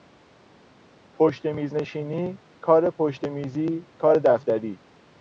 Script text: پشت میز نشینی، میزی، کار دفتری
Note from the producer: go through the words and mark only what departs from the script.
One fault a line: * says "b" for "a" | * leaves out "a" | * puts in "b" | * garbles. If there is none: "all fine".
* puts in "کار پشت"